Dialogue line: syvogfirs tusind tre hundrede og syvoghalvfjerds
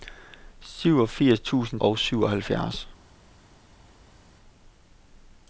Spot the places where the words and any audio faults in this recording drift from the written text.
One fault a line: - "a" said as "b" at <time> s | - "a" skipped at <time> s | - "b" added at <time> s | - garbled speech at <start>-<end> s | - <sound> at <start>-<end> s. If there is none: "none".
- "tre hundrede" skipped at 1.8 s